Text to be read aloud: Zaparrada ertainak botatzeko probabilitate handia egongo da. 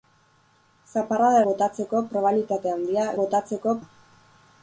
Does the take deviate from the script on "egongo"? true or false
true